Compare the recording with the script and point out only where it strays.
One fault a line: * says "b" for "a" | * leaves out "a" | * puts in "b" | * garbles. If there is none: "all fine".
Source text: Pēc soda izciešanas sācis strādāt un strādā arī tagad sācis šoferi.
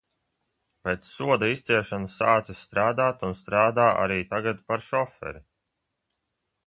* says "par" for "sācis"